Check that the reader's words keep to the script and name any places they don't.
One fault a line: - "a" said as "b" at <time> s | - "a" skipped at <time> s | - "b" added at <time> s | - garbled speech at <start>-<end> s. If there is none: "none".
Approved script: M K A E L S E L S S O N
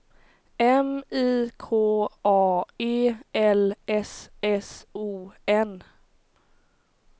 - "I" added at 1.1 s
- "E L S" skipped at 4.3 s